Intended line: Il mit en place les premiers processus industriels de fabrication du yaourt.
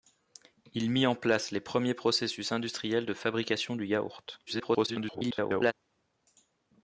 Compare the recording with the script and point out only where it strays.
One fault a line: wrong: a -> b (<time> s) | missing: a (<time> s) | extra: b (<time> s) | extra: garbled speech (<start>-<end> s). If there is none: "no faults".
extra: garbled speech (4.5-5.7 s)